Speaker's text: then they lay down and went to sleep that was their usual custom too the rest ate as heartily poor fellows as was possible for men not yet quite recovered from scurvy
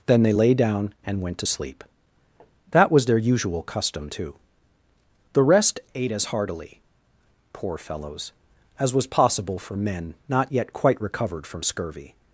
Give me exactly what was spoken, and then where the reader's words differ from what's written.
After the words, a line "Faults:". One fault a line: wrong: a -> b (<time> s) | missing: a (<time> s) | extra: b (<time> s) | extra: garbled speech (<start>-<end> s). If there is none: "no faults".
then they lay down and went to sleep that was their usual custom too the rest ate as heartily poor fellows as was possible for men not yet quite recovered from scurvy
Faults:
no faults